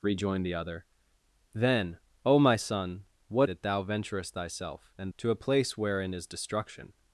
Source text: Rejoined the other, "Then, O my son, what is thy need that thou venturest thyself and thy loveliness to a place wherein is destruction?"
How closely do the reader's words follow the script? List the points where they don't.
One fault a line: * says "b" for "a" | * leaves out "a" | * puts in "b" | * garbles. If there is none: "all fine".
* leaves out "is thy need"
* leaves out "thy loveliness"